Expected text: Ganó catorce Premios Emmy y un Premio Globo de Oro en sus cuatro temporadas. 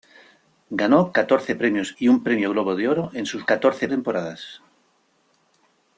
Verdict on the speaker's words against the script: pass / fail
fail